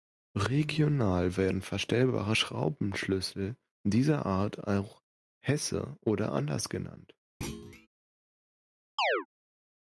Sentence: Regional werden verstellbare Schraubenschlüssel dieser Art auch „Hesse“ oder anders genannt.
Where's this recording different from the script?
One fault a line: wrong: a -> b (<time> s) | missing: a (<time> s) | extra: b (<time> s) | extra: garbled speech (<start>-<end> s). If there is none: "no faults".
no faults